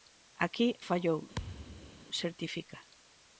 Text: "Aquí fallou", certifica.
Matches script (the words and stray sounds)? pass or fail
fail